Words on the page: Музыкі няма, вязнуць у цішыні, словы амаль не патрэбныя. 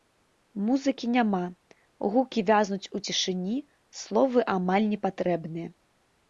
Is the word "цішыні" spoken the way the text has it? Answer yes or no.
yes